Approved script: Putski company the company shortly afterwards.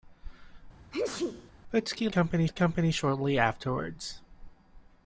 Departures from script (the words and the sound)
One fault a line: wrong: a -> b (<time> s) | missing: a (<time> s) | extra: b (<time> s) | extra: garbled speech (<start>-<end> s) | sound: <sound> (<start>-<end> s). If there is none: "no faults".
sound: sneeze (0.9-1.5 s)